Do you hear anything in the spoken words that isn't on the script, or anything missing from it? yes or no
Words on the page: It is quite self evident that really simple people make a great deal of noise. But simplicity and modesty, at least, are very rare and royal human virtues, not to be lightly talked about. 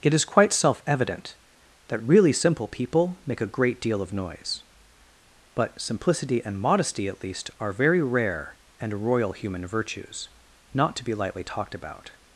no